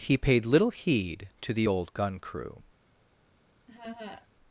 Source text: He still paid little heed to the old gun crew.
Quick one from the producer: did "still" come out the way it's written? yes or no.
no